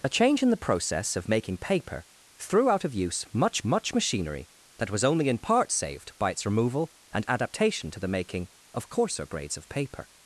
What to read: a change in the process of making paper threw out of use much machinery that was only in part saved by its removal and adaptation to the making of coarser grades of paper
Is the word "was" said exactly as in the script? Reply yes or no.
yes